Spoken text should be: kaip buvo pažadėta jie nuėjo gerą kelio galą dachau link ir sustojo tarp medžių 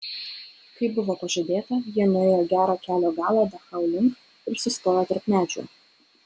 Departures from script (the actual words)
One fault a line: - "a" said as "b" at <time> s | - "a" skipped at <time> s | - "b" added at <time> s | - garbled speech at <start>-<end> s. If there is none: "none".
none